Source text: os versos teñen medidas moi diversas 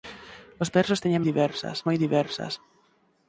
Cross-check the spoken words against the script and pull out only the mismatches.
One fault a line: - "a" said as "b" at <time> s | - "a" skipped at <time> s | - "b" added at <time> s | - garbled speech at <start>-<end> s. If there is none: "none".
- "medidas" said as "diversas" at 1.3 s